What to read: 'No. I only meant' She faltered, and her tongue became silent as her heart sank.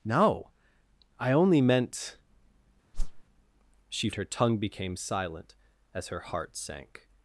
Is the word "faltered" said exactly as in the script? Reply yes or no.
no